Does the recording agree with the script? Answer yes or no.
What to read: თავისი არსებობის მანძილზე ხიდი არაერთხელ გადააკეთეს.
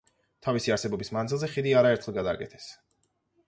yes